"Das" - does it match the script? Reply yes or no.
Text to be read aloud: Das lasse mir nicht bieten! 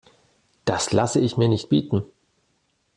yes